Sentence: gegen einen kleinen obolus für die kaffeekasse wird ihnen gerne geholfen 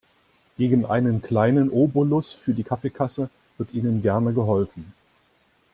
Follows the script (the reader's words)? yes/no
yes